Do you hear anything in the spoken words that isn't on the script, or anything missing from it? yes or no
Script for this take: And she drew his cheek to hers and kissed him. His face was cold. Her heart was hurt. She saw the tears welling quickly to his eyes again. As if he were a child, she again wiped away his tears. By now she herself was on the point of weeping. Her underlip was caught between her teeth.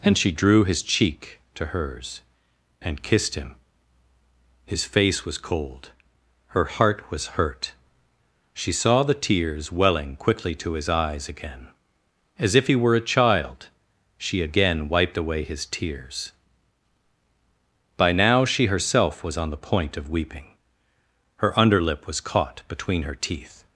no